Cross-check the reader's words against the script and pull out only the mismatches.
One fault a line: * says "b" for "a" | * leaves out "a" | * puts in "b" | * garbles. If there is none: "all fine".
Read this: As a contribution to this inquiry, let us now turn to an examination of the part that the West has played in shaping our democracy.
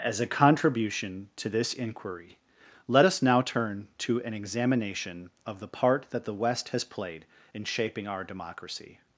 all fine